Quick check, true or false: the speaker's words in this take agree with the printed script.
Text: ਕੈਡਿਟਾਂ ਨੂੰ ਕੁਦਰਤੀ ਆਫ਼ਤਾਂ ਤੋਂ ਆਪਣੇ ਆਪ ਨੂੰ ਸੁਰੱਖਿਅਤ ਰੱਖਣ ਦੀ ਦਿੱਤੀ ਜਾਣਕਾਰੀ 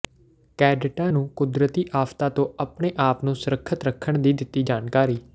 true